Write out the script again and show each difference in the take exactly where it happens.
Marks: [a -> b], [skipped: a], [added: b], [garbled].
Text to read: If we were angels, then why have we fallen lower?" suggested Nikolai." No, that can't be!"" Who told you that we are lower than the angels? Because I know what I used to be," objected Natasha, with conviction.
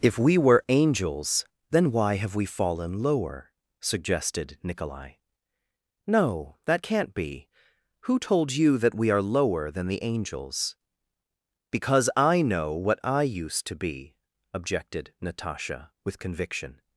If we were angels, then why have we fallen lower?" suggested Nikolai." No, that can't be!"" Who told you that we are lower than the angels? Because I know what I used to be," objected Natasha, with conviction.